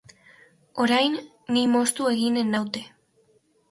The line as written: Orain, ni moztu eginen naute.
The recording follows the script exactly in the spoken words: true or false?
true